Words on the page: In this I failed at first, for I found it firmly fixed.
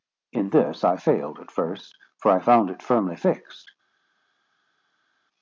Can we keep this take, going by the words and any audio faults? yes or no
yes